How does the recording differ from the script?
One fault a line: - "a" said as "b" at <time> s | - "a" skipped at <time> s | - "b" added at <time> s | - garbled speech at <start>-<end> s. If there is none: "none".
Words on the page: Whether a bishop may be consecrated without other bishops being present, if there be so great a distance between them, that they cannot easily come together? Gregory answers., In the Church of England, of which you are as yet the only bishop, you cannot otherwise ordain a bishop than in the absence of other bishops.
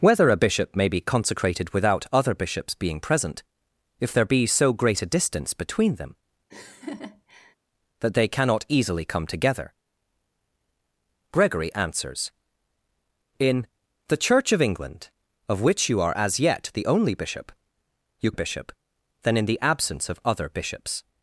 - "cannot otherwise ordain" skipped at 18.3 s